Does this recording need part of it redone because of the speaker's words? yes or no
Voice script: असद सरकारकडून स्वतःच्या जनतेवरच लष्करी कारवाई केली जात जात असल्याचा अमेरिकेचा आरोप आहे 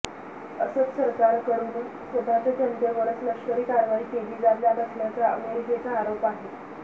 no